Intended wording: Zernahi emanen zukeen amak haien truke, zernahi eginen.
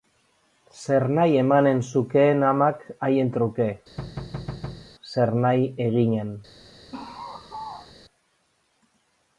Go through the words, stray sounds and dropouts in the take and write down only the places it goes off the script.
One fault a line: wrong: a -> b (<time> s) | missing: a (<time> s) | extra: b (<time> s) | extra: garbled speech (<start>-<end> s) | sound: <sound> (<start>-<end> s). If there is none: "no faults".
sound: thud (4.0-4.9 s)
sound: laugh (6.9-7.9 s)